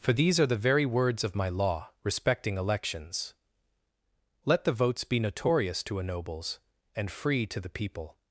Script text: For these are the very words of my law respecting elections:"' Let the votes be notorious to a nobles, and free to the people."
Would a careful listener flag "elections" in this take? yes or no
no